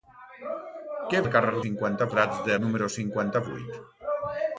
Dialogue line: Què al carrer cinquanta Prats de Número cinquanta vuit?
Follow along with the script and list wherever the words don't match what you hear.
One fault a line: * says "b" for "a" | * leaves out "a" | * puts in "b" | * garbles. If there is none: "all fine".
all fine